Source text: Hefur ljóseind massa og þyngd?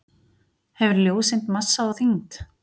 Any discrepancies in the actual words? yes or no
no